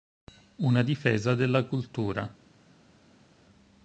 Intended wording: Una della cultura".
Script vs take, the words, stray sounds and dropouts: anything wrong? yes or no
yes